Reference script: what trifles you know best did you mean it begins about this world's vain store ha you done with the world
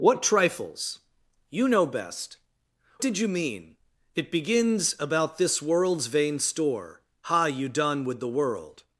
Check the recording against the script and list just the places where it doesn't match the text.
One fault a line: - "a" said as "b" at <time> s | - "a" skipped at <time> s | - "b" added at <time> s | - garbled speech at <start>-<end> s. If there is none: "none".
none